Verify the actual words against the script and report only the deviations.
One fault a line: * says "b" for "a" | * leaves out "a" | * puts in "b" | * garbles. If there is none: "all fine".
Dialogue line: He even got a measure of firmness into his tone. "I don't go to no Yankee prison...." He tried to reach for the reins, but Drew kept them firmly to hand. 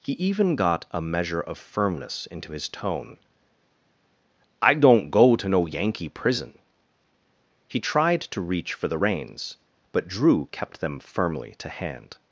all fine